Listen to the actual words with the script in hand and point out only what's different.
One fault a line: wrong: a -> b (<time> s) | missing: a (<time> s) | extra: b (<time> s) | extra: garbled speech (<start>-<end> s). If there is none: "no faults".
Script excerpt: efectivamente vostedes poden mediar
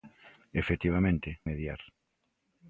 missing: vostedes poden (1.3 s)